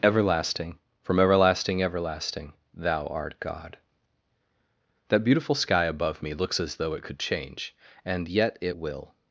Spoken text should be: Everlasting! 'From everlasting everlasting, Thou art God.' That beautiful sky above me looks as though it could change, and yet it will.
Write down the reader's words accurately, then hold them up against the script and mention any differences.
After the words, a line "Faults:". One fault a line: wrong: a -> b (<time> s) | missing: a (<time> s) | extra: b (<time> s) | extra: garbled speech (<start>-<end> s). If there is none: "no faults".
Everlasting! 'From everlasting everlasting, Thou art God.' That beautiful sky above me looks as though it could change, and yet it will.
Faults:
no faults